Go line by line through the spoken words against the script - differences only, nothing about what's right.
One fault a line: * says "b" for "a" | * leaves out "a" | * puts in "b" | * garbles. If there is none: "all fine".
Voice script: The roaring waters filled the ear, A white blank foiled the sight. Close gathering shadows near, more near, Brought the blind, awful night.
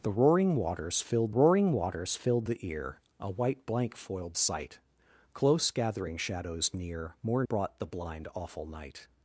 * puts in "roaring waters filled"
* leaves out "the"
* leaves out "near"